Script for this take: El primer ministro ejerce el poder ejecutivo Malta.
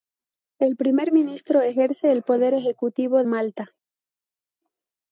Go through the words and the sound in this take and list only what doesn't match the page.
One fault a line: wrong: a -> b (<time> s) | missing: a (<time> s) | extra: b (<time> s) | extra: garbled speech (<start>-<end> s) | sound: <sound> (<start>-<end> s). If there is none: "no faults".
no faults